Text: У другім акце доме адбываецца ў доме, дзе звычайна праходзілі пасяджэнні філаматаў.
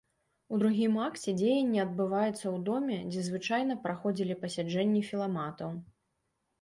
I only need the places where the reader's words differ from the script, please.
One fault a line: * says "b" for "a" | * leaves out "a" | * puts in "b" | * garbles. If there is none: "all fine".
* says "дзеянне" for "доме"